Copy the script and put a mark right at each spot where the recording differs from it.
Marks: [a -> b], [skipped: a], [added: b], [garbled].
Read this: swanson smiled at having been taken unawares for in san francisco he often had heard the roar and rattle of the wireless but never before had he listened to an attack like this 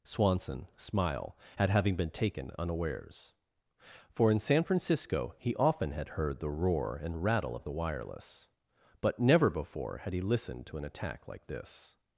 swanson [smiled -> smile] at having been taken unawares for in san francisco he often had heard the roar and rattle of the wireless but never before had he listened to an attack like this